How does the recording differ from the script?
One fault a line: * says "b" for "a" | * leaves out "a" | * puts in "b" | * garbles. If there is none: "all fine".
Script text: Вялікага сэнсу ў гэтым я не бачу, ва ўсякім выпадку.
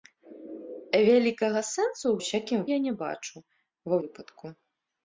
* says "ўсякім" for "гэтым"
* leaves out "ўсякім"